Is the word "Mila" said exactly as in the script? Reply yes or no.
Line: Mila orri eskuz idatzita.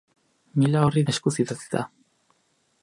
yes